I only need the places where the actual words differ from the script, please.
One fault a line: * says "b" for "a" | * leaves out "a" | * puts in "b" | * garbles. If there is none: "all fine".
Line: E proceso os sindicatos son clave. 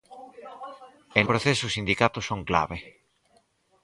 all fine